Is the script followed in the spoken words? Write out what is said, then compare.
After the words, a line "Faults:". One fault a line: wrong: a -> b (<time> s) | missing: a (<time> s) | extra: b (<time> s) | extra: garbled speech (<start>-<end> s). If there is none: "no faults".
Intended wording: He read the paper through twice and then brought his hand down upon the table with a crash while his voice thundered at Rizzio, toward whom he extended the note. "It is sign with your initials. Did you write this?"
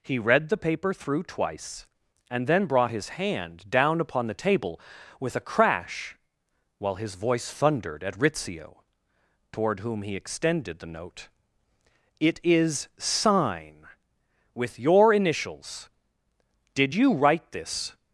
He read the paper through twice and then brought his hand down upon the table with a crash while his voice thundered at Rizzio, toward whom he extended the note. "It is sign with your initials. Did you write this?"
Faults:
no faults